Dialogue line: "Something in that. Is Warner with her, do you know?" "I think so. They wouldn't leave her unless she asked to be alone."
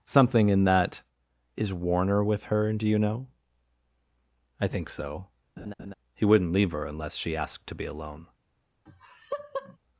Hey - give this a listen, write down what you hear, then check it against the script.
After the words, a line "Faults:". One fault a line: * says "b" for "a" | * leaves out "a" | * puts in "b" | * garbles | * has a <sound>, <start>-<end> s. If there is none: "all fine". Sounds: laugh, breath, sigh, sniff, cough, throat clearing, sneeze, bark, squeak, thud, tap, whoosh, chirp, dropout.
"Something in that. Is Warner with her, do you know?" "I think so. He wouldn't leave her unless she asked to be alone."
Faults:
* has a laugh, 5.6-5.9 s
* says "He" for "They"
* has a laugh, 8.9-9.8 s